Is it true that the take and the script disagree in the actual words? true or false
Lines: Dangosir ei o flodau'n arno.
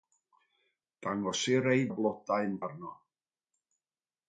false